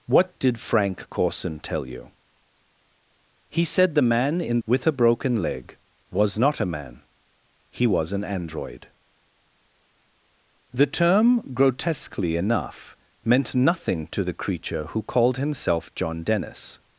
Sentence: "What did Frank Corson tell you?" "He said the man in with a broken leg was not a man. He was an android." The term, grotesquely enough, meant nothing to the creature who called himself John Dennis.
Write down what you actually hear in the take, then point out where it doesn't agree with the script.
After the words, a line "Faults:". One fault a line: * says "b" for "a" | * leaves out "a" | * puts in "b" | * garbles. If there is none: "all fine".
"What did Frank Corson tell you?" "He said the man in with a broken leg was not a man. He was an android." The term, grotesquely enough, meant nothing to the creature who called himself John Dennis.
Faults:
all fine